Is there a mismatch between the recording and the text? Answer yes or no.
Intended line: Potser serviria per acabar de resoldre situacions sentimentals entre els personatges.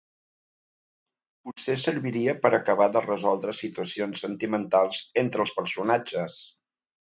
no